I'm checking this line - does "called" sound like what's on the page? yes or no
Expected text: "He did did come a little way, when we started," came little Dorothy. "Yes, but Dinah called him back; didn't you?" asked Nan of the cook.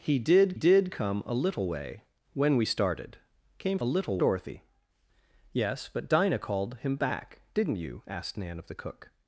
yes